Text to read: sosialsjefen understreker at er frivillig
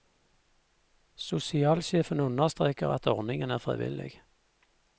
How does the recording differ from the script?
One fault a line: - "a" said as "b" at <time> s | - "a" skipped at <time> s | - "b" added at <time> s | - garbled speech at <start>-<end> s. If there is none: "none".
- "ordningen" added at 3.1 s